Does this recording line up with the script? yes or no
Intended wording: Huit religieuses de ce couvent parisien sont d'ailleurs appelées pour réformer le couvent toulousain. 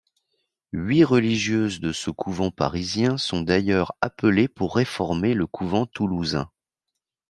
yes